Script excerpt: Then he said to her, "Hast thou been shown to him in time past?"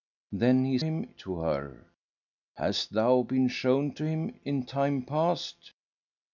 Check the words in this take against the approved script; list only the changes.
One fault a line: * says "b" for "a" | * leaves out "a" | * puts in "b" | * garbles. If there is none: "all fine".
* says "him" for "said"